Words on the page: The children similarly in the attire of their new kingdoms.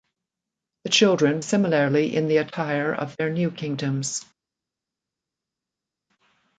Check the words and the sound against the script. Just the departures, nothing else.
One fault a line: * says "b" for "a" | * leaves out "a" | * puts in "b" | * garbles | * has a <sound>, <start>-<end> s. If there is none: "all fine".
all fine